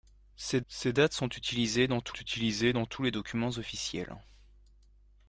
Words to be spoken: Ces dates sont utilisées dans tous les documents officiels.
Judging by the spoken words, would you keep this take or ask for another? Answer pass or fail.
fail